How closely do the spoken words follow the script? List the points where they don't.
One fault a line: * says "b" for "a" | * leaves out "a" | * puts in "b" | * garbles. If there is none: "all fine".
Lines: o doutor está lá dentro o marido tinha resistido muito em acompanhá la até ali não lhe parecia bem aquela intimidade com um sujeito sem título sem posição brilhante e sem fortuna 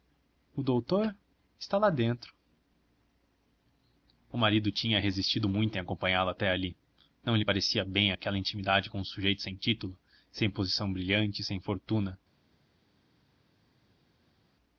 all fine